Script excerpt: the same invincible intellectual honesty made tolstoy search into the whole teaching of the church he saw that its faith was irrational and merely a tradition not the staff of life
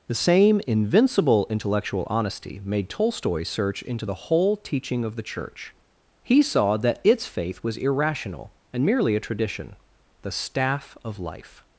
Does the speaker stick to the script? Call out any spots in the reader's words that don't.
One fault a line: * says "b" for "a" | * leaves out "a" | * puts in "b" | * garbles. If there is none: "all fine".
* leaves out "not"